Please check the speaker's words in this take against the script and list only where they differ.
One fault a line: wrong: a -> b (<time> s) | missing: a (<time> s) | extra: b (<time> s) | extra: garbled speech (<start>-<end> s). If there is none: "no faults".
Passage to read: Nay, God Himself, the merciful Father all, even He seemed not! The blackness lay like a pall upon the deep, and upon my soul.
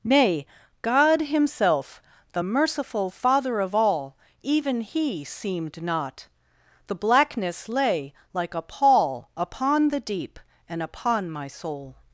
extra: of (3.6 s)